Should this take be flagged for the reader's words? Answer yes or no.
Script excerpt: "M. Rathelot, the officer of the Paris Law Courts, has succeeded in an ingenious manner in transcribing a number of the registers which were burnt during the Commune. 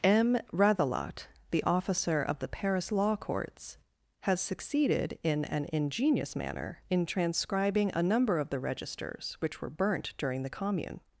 no